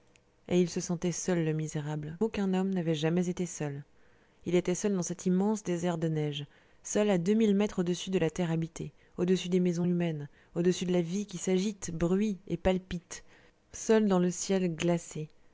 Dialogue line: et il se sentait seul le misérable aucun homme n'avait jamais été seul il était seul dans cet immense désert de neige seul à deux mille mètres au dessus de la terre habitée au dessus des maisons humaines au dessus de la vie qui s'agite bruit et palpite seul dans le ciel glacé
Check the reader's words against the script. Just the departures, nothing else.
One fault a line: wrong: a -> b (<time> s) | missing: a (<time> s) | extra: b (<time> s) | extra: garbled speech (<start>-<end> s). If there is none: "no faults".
no faults